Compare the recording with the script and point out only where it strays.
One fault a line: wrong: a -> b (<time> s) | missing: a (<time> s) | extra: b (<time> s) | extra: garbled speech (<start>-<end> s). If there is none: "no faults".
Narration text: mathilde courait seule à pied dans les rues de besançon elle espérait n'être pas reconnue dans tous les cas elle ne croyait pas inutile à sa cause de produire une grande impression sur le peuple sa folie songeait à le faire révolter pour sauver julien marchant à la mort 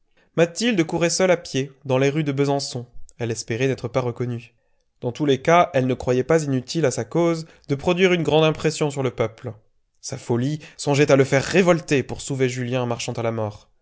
no faults